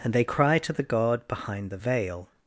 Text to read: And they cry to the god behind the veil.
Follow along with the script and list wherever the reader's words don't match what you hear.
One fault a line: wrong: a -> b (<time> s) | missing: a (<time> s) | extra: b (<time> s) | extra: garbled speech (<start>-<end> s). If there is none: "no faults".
no faults